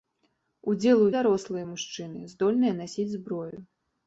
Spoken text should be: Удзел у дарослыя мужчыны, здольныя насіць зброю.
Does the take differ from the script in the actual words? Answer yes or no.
no